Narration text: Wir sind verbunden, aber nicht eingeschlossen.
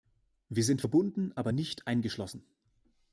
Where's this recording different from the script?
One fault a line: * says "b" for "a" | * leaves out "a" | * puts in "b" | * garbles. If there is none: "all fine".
all fine